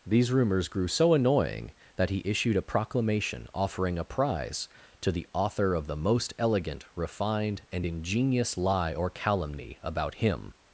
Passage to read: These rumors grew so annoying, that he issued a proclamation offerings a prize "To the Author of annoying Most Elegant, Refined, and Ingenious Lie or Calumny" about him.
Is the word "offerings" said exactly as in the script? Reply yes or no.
no